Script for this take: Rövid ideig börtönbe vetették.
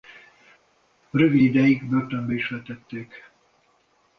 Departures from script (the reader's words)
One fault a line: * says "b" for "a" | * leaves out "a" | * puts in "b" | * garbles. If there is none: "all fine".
* puts in "is"